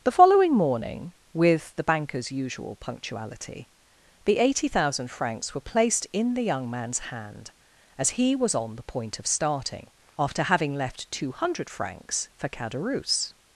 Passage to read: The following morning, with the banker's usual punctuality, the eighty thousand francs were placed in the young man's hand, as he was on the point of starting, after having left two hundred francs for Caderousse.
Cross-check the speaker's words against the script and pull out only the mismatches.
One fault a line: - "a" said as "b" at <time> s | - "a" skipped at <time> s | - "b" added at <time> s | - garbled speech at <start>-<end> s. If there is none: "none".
none